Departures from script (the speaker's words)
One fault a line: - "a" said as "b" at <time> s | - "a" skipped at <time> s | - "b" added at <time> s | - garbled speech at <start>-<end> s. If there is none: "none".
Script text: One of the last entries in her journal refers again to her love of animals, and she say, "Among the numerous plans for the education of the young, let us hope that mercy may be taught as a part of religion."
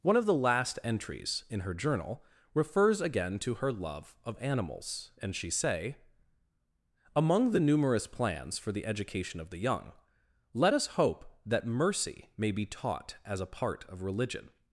none